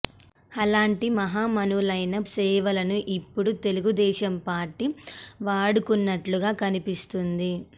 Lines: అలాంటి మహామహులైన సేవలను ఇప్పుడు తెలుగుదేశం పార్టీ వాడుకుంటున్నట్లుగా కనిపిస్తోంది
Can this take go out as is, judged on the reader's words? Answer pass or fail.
pass